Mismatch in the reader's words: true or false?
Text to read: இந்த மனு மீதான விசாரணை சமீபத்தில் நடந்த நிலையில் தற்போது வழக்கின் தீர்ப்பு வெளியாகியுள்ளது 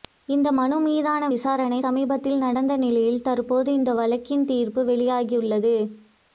true